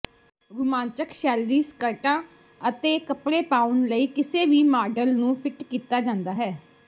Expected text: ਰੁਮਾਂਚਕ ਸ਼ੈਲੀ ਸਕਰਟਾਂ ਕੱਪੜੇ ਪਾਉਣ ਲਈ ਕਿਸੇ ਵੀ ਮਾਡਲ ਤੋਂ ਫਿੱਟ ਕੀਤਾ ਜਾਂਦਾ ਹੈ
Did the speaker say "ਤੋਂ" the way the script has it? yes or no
no